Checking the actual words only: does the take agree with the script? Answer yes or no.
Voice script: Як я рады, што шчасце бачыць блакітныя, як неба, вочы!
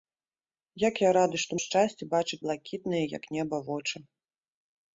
yes